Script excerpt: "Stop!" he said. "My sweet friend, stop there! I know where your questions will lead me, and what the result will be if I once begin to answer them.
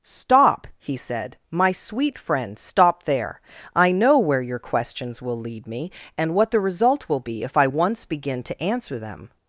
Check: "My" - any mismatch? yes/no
no